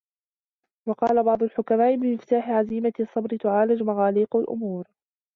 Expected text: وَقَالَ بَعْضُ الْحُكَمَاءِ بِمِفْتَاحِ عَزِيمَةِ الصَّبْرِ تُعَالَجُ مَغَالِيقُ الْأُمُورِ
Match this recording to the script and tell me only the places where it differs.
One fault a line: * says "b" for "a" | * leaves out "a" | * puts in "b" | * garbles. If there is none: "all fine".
all fine